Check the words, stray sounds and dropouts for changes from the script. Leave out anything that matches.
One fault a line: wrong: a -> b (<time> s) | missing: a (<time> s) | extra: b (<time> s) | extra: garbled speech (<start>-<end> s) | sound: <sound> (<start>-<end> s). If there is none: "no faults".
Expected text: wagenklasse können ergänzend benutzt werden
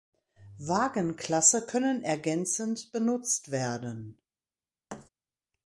sound: thud (4.9-5.1 s)